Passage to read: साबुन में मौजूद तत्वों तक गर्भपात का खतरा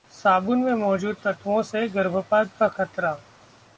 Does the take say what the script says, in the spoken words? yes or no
no